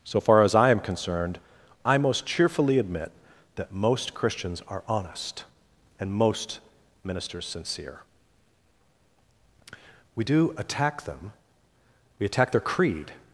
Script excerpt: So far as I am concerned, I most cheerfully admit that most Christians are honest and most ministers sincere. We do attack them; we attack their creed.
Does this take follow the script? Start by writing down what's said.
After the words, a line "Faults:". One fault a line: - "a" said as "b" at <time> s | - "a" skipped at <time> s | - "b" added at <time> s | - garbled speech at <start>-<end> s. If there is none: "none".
So far as I am concerned, I most cheerfully admit that most Christians are honest and most ministers sincere. We do attack them; we attack their creed.
Faults:
none